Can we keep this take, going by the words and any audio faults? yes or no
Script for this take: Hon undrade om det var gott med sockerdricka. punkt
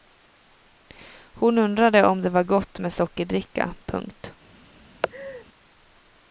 no